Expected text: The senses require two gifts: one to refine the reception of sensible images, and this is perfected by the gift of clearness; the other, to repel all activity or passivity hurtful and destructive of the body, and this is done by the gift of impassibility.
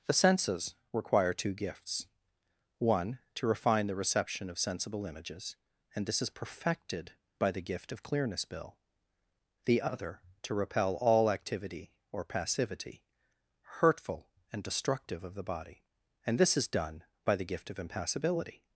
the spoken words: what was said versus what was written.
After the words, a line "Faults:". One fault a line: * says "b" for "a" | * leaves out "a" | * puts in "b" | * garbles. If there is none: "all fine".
The senses require two gifts: one to refine the reception of sensible images, and this is perfected by the gift of clearness; bill the other, to repel all activity or passivity hurtful and destructive of the body, and this is done by the gift of impassibility.
Faults:
* puts in "bill"